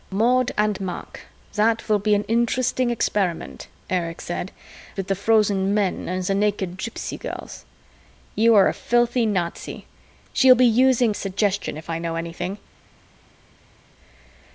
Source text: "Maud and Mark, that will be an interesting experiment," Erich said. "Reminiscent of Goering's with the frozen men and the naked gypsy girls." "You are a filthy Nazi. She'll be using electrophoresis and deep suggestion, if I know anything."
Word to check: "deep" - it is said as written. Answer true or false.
false